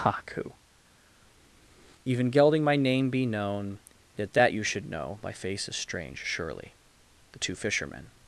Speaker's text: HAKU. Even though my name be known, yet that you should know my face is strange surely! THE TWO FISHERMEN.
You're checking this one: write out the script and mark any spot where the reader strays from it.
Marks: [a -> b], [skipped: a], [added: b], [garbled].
HAKU. Even [though -> gelding] my name be known, yet that you should know my face is strange surely! THE TWO FISHERMEN.